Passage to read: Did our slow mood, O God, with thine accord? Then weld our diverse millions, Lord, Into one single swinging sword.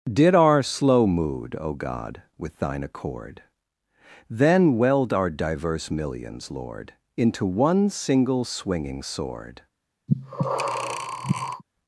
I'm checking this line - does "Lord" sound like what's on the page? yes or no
yes